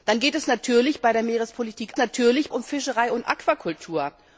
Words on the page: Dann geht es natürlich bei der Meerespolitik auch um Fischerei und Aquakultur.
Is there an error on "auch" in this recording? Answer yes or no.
yes